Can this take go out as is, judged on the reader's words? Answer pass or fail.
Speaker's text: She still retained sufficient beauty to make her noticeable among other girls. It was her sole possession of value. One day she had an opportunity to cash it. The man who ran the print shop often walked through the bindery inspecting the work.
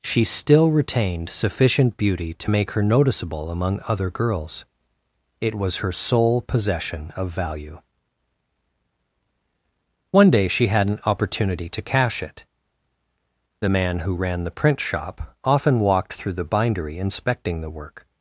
pass